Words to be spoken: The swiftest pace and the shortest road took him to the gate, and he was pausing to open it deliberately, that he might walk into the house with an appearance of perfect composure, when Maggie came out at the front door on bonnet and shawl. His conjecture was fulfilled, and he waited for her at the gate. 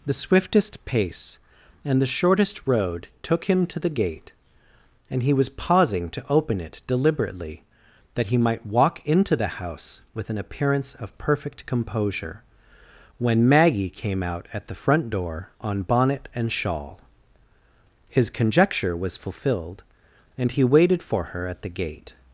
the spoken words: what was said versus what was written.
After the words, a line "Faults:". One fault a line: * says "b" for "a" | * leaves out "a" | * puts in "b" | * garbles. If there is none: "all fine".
The swiftest pace and the shortest road took him to the gate, and he was pausing to open it deliberately, that he might walk into the house with an appearance of perfect composure, when Maggie came out at the front door on bonnet and shawl. His conjecture was fulfilled, and he waited for her at the gate.
Faults:
all fine